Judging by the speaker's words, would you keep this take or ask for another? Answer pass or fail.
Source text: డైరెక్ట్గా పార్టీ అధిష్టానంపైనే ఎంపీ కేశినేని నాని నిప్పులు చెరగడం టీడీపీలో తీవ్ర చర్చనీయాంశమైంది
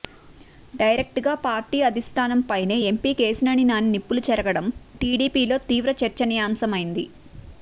pass